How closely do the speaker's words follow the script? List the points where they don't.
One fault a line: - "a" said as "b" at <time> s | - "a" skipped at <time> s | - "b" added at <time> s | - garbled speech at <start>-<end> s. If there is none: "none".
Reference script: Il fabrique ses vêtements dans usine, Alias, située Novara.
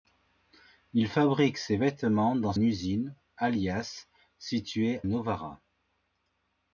none